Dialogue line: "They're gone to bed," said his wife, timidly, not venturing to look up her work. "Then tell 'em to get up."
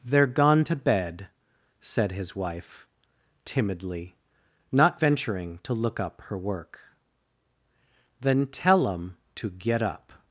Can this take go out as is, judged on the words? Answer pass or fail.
pass